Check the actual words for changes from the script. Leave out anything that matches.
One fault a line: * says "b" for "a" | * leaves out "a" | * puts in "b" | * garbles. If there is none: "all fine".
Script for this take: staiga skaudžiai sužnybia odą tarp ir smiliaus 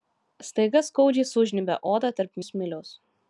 all fine